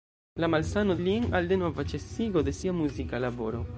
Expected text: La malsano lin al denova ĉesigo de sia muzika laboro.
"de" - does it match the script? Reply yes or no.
yes